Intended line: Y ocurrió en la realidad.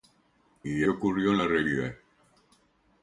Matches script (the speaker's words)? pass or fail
pass